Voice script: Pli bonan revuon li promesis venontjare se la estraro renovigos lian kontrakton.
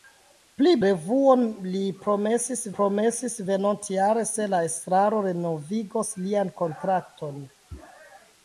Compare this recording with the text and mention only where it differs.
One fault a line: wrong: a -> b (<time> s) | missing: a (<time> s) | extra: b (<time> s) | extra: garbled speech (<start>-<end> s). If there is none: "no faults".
missing: bonan (0.7 s)
extra: promesis (2.8 s)